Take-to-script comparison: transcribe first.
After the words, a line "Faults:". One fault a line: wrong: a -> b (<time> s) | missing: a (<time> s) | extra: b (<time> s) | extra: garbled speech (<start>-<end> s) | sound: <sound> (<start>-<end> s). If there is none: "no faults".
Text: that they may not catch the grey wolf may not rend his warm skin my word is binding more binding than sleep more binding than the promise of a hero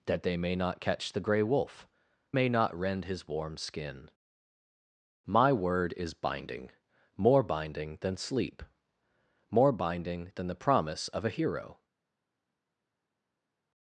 that they may not catch the grey wolf may not rend his warm skin my word is binding more binding than sleep more binding than the promise of a hero
Faults:
no faults